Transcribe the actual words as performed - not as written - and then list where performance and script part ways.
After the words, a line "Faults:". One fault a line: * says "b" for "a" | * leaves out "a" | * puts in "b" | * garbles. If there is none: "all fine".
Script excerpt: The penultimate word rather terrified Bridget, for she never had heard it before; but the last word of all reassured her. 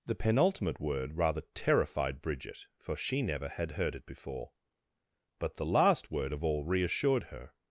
The penultimate word rather terrified Bridget, for she never had heard it before; but the last word of all reassured her.
Faults:
all fine